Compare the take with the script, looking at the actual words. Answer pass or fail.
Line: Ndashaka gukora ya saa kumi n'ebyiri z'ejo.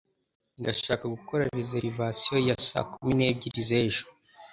fail